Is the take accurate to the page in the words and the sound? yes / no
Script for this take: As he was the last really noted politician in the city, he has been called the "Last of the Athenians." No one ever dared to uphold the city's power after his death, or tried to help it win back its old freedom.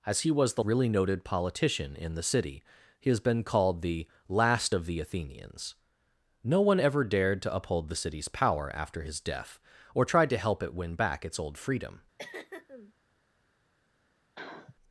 no